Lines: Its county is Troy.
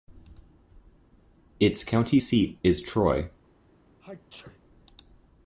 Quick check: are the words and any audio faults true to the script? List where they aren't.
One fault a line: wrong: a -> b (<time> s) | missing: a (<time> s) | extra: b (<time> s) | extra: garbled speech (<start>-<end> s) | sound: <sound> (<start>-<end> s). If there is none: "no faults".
extra: seat (2.2 s)
sound: sneeze (4.0-4.6 s)